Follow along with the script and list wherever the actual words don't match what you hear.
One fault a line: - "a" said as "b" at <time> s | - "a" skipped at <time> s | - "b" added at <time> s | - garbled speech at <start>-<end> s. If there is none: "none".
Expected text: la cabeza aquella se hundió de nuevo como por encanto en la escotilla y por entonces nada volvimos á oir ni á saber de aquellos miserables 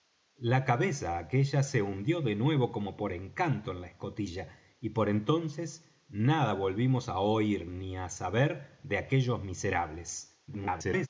- garbled speech at 10.5-11.1 s